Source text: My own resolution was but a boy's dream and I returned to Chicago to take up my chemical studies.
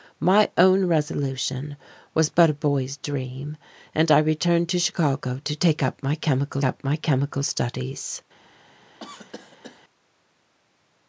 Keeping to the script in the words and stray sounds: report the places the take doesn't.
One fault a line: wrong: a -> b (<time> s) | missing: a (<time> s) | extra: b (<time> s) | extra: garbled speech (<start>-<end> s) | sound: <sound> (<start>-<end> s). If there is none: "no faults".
extra: up my chemical (6.6 s)
sound: cough (9.0-9.8 s)